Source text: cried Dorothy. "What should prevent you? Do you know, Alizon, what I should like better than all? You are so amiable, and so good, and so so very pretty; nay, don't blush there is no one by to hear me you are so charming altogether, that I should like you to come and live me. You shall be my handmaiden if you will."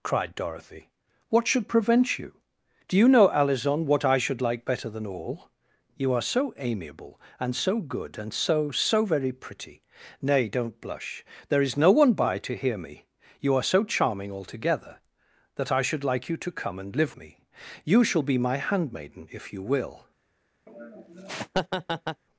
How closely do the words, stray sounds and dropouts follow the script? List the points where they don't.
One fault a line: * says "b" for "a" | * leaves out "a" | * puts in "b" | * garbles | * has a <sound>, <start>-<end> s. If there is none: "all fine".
* has a laugh, 20.7-22.2 s